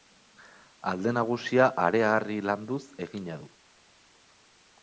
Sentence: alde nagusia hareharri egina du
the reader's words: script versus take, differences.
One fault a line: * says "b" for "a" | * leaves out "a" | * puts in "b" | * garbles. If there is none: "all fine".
* puts in "landuz"